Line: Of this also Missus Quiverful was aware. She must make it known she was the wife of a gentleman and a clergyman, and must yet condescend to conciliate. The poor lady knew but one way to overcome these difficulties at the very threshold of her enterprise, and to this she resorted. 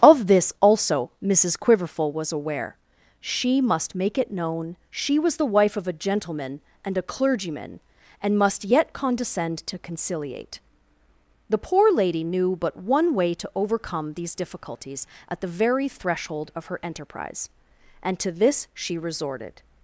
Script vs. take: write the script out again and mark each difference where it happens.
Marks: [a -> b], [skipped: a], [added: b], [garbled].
Of this also Missus Quiverful was aware. She must make it known she was the wife of a gentleman and a clergyman, and must yet condescend to conciliate. The poor lady knew but one way to overcome these difficulties at the very threshold of her enterprise, and to this she resorted.